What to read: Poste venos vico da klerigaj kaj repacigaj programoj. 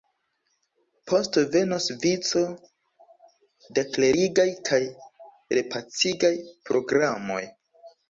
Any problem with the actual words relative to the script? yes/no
no